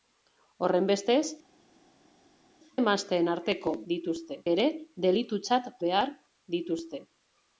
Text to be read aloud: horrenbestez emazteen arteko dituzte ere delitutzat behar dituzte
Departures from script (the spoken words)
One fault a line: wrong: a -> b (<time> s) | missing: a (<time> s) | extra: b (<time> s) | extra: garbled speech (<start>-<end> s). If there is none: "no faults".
no faults